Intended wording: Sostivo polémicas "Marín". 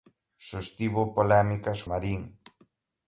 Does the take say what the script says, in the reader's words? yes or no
yes